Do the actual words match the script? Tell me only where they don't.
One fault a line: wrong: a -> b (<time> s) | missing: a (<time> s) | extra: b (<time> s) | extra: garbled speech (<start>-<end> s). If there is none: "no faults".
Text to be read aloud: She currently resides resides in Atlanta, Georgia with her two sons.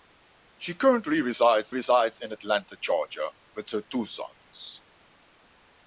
no faults